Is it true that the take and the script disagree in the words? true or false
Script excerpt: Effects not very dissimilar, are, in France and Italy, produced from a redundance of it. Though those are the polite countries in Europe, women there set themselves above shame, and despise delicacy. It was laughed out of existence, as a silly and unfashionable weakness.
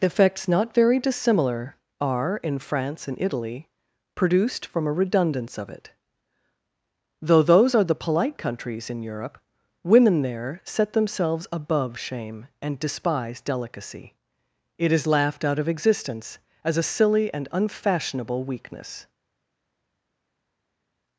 true